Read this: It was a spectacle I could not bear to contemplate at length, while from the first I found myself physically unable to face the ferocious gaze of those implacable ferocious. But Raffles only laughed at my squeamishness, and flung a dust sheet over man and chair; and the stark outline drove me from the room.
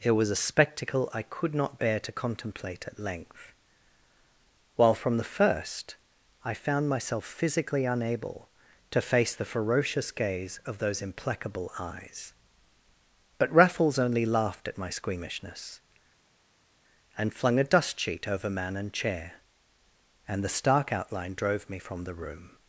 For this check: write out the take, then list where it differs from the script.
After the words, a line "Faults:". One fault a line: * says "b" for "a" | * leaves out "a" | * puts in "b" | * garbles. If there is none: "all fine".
It was a spectacle I could not bear to contemplate at length, while from the first I found myself physically unable to face the ferocious gaze of those implacable eyes. But Raffles only laughed at my squeamishness, and flung a dust sheet over man and chair; and the stark outline drove me from the room.
Faults:
* says "eyes" for "ferocious"